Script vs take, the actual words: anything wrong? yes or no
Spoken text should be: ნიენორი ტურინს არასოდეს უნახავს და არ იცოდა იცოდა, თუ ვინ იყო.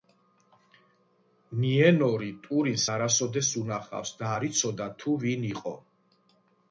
yes